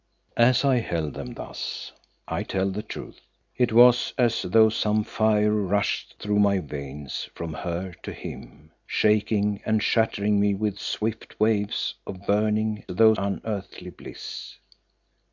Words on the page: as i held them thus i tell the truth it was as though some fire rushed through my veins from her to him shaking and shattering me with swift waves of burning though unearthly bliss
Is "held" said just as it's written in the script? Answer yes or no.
yes